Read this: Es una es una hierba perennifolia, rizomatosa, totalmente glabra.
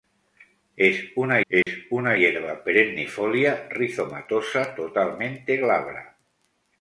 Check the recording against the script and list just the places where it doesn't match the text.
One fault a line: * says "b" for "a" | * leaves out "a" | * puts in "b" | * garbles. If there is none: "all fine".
all fine